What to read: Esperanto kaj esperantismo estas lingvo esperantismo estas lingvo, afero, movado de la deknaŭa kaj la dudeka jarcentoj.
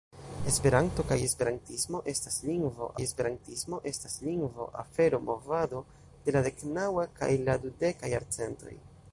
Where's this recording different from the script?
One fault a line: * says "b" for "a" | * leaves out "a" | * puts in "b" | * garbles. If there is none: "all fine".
all fine